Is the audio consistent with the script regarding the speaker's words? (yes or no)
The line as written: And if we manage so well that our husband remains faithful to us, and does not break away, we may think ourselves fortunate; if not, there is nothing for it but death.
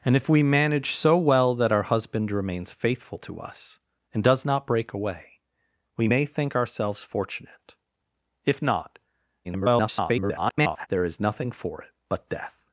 no